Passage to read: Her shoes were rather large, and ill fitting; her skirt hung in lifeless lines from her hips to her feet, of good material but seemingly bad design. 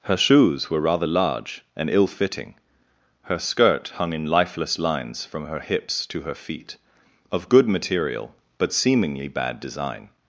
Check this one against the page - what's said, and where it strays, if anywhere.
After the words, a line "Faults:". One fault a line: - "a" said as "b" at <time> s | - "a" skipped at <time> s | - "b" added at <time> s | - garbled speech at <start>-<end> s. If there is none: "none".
Her shoes were rather large, and ill fitting; her skirt hung in lifeless lines from her hips to her feet, of good material but seemingly bad design.
Faults:
none